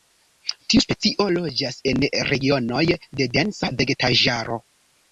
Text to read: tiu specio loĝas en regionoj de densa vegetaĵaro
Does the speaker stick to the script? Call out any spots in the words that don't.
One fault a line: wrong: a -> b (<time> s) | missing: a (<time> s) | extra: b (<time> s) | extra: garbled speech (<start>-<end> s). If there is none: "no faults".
no faults